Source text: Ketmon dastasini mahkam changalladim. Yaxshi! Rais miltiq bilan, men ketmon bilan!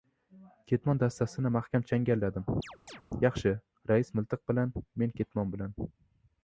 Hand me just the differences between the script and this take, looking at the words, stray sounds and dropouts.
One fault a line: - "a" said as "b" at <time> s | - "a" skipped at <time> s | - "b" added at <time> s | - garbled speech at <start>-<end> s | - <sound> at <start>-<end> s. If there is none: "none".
- chirp at 2.6-3.0 s